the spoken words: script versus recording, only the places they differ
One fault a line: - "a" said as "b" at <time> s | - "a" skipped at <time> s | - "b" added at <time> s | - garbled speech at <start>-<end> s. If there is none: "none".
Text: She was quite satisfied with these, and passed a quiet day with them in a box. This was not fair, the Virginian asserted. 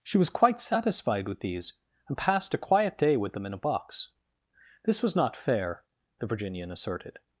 none